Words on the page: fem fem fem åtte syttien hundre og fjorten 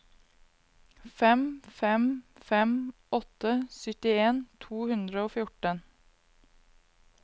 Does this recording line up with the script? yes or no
no